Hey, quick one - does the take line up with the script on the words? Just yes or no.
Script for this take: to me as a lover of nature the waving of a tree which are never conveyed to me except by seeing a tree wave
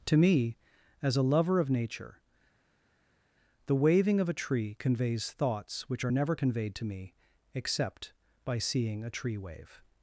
no